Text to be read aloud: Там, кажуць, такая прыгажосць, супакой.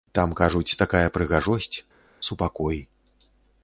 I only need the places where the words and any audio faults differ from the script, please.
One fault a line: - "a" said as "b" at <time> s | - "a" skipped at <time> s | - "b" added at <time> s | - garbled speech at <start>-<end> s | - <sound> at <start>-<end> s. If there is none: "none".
none